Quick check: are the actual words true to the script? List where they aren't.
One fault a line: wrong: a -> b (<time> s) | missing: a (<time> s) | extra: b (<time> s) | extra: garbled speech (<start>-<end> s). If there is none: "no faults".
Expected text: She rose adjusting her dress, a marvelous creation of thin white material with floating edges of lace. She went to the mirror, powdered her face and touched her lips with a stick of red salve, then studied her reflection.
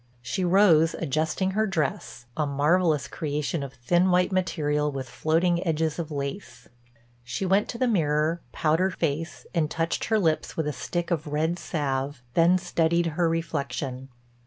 missing: her (8.9 s)